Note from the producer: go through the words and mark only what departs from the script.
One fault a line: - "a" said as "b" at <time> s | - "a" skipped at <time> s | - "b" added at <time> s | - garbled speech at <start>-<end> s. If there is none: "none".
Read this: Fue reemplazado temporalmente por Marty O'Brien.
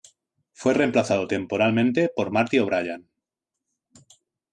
none